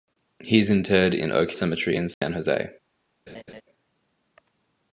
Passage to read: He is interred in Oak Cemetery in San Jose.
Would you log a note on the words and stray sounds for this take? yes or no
yes